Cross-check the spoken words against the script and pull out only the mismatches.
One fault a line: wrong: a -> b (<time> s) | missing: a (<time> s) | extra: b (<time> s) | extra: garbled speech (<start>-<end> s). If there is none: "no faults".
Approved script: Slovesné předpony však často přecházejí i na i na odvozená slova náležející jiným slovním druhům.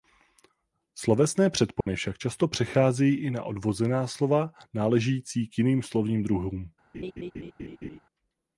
missing: i na (3.4 s)
extra: k (5.5 s)